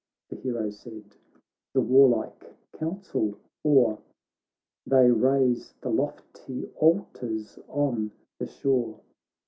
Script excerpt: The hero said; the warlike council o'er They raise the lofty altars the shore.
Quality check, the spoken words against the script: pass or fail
fail